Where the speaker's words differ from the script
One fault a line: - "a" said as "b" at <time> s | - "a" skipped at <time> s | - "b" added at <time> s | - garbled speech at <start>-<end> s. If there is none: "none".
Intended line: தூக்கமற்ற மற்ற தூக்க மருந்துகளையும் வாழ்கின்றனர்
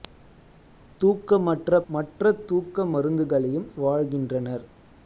none